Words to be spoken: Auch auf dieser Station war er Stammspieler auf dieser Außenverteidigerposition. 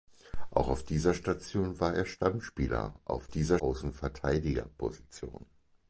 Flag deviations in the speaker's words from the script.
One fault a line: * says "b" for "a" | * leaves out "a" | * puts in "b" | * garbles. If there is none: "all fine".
all fine